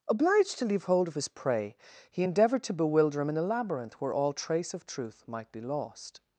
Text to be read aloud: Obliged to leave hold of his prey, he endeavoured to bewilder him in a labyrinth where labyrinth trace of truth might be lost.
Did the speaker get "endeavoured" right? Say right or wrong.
right